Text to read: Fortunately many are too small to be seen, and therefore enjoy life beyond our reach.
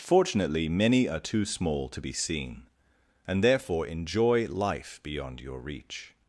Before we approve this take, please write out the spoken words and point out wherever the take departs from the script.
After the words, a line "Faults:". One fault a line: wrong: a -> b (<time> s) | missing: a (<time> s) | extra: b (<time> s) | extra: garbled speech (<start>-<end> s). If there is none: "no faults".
Fortunately many are too small to be seen, and therefore enjoy life beyond your reach.
Faults:
wrong: our -> your (5.4 s)